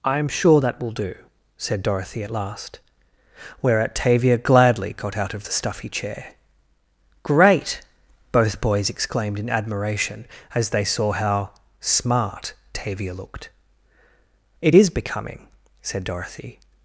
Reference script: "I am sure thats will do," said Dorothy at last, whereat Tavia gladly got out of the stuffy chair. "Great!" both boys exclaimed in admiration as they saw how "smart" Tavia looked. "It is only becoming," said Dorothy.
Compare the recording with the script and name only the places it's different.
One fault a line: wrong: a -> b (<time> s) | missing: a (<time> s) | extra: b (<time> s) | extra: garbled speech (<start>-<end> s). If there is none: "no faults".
wrong: thats -> that (0.6 s)
missing: only (14.9 s)